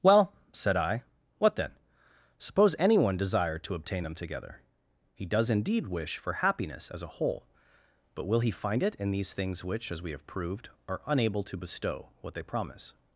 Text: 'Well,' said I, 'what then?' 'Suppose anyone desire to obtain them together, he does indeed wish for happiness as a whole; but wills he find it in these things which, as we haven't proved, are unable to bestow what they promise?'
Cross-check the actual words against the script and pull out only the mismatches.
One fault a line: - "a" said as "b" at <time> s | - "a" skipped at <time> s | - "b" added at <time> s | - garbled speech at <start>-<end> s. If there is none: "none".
- "wills" said as "will" at 8.3 s
- "haven't" said as "have" at 10.1 s